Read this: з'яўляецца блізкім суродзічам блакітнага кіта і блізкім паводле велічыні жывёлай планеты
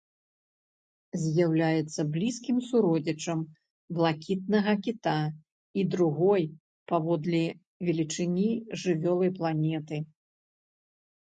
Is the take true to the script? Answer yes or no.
no